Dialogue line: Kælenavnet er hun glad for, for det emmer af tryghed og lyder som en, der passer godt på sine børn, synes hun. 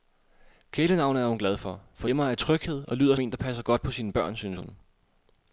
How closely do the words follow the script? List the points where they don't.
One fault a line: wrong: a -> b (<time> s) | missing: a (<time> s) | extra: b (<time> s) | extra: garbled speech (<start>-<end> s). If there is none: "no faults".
missing: det (2.1 s)
missing: som (3.1 s)